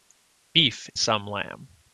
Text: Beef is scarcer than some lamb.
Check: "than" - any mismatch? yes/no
yes